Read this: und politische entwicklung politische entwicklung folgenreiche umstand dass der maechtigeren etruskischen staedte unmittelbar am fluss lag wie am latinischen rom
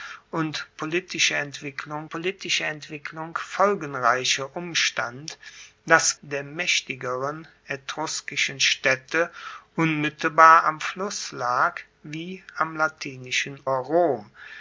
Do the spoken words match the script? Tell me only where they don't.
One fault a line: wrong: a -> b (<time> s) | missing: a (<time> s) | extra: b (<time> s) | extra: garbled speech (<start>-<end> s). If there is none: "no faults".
no faults